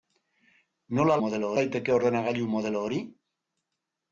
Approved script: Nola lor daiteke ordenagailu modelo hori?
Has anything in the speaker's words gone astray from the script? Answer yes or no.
yes